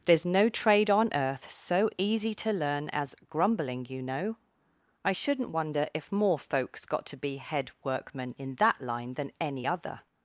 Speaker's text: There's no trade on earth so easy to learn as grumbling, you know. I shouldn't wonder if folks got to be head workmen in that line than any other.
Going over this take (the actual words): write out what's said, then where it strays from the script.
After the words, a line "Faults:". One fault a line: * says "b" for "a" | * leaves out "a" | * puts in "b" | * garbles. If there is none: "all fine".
There's no trade on earth so easy to learn as grumbling, you know. I shouldn't wonder if more folks got to be head workmen in that line than any other.
Faults:
* puts in "more"